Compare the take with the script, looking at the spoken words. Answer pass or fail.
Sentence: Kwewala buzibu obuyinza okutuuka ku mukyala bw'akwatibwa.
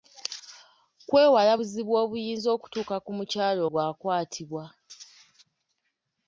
pass